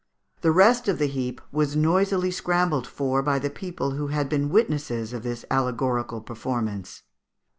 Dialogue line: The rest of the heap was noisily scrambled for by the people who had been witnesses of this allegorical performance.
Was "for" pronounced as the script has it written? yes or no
yes